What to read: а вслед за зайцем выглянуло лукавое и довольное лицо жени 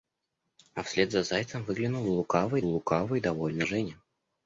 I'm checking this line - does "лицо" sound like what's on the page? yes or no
no